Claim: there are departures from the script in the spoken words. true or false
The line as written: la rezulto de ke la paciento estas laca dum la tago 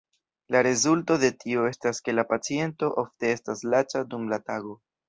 true